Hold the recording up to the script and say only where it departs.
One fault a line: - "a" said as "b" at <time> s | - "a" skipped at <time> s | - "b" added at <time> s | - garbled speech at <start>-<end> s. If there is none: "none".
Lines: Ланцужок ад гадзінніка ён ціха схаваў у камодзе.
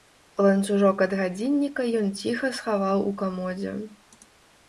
none